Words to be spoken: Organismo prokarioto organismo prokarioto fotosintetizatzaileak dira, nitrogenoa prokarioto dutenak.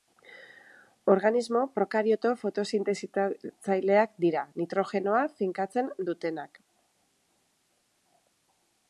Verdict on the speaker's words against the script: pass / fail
fail